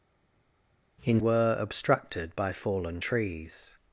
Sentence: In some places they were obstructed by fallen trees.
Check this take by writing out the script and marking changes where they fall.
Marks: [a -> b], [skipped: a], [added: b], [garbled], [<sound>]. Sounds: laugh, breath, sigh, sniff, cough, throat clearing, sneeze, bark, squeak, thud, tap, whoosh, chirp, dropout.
In [skipped: some places they] were obstructed by fallen trees.